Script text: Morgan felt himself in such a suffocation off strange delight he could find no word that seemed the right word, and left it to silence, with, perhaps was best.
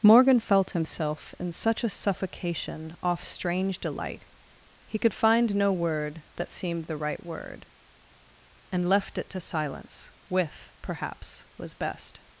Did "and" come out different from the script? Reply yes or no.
no